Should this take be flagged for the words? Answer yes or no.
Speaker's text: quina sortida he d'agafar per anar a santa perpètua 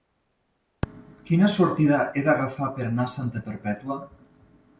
no